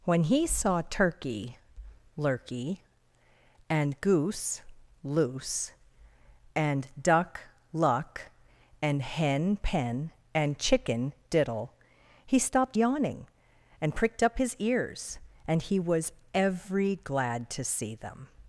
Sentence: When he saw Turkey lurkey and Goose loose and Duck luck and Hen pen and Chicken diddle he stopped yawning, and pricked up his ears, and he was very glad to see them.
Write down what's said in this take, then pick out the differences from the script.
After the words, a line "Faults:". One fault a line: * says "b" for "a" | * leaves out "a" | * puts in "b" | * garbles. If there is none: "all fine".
When he saw Turkey lurkey and Goose loose and Duck luck and Hen pen and Chicken diddle he stopped yawning, and pricked up his ears, and he was every glad to see them.
Faults:
* says "every" for "very"